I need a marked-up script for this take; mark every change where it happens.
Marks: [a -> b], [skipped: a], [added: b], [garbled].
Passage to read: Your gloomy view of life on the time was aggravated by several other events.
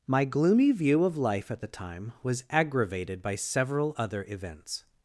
[Your -> My] gloomy view of life [on -> at] the time was aggravated by several other events.